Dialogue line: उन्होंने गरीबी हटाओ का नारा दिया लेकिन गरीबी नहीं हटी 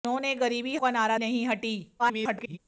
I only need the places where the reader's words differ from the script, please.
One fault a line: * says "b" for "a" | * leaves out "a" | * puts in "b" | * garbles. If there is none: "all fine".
* leaves out "हटाओ"
* leaves out "दिया लेकिन गरीबी"
* garbles